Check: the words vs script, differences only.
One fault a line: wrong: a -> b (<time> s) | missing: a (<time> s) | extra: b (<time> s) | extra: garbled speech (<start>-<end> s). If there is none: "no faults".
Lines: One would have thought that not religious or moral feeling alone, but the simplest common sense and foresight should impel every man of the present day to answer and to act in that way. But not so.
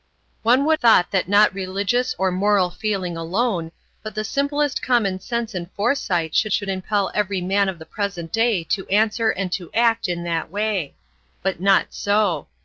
missing: have (0.8 s)
extra: should (6.5 s)